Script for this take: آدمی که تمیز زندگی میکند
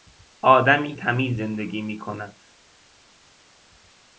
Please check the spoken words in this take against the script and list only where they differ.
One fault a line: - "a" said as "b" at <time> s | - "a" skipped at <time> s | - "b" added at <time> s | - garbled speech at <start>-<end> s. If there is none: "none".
- "که" skipped at 0.9 s